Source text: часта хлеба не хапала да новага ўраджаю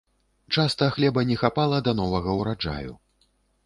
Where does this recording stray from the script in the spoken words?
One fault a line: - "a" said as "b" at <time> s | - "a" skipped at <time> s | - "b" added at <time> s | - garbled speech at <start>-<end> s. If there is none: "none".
none